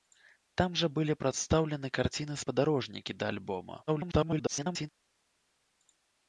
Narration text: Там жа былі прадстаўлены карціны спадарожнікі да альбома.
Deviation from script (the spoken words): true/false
true